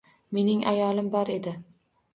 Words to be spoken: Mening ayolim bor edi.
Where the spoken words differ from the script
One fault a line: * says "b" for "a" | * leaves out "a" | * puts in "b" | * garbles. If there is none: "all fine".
all fine